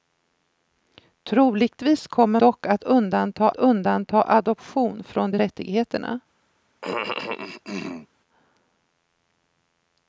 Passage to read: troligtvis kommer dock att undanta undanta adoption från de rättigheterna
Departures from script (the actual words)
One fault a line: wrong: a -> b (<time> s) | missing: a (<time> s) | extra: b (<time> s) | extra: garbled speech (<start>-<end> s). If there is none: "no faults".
no faults